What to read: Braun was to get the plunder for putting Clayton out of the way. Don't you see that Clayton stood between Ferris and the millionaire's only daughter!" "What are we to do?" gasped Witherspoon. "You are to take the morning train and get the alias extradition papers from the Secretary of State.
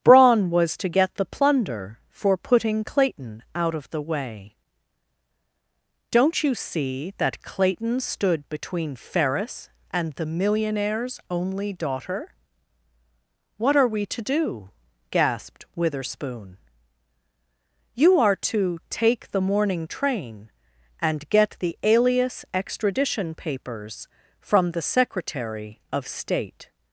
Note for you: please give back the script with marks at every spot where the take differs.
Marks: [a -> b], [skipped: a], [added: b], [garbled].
Braun was to get the plunder for putting Clayton out of the way. Don't you see that Clayton stood between Ferris and the millionaire's only daughter!" "What are we to do?" gasped Witherspoon. "You are to take the morning train and get the alias extradition papers from the Secretary of State.